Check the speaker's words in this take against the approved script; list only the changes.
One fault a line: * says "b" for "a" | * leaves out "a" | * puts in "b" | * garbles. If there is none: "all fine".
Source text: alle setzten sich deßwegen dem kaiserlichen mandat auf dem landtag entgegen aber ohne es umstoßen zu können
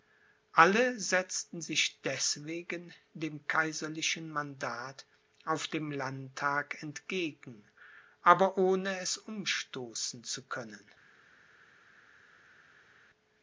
all fine